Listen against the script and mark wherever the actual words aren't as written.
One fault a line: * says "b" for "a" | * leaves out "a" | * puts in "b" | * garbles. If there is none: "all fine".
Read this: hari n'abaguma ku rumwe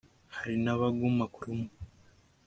all fine